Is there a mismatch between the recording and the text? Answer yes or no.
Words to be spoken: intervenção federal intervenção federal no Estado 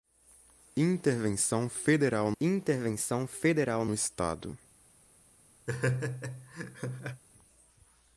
no